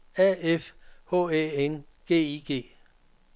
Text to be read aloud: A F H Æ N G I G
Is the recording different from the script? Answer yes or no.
no